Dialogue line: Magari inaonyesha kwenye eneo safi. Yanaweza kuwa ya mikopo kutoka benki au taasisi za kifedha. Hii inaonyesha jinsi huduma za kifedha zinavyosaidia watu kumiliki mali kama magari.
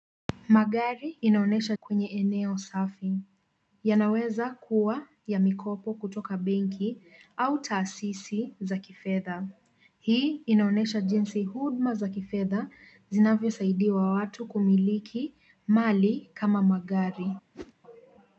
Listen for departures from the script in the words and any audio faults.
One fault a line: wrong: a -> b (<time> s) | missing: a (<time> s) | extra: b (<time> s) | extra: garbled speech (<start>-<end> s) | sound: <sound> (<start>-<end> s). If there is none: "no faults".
sound: whoosh (17.5-17.7 s)